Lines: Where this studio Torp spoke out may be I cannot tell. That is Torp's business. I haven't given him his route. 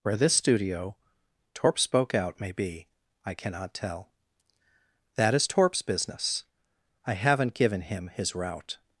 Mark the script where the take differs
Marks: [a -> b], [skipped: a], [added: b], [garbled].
Where this studio Torp spoke out may be I cannot tell. That is Torp's business. I haven't given him his route.